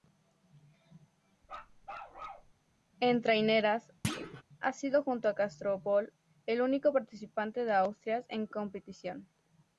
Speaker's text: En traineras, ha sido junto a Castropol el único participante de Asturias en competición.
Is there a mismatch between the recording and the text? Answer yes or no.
no